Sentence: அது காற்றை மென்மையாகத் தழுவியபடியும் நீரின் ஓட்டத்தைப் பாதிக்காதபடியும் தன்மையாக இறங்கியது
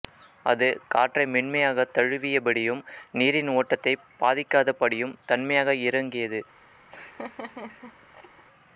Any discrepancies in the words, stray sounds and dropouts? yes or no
yes